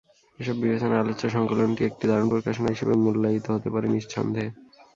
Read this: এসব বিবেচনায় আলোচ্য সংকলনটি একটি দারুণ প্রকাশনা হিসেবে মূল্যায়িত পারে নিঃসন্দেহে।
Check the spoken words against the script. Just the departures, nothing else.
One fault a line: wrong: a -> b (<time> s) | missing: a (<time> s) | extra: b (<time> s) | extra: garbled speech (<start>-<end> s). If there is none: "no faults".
extra: হতে (3.5 s)